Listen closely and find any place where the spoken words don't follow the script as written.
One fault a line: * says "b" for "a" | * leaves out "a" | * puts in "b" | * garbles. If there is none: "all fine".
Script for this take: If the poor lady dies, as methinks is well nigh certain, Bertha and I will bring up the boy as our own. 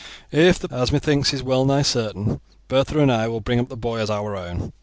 * leaves out "poor lady dies"